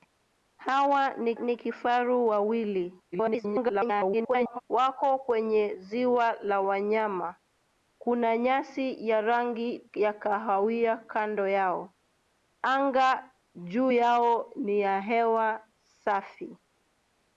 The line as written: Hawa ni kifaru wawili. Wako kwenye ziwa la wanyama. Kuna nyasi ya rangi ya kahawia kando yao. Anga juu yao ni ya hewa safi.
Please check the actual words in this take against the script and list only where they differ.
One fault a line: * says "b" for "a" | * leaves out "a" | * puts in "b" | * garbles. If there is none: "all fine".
* puts in "ni"
* garbles